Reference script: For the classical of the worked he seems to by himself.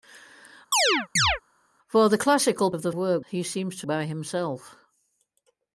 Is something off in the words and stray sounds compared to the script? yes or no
yes